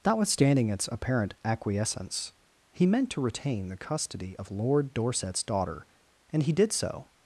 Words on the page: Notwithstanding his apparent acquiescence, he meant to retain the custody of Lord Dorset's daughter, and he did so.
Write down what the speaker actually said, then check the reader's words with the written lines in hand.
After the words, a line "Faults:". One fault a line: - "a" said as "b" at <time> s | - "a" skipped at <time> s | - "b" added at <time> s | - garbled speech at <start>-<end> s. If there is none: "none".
Notwithstanding its apparent acquiescence, he meant to retain the custody of Lord Dorset's daughter, and he did so.
Faults:
- "his" said as "its" at 0.7 s